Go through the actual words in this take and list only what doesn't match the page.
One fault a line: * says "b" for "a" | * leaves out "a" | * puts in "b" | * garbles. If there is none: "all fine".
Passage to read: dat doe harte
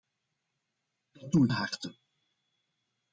all fine